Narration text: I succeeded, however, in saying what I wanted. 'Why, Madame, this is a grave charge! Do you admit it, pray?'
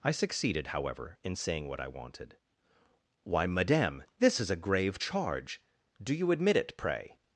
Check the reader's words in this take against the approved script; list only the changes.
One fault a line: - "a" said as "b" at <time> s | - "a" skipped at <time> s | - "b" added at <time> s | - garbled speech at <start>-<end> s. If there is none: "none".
none